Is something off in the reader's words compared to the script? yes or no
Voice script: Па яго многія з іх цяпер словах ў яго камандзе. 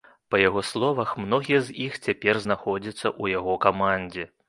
yes